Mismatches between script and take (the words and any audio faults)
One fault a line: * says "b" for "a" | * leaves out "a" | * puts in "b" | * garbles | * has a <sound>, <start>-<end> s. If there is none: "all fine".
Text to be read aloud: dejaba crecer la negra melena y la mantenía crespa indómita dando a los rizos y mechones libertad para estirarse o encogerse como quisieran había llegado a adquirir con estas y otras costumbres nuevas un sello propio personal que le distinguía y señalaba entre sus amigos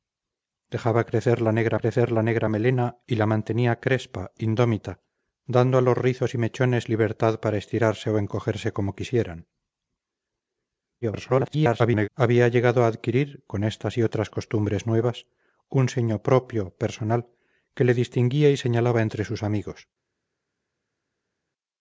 * puts in "crecer la negra"
* garbles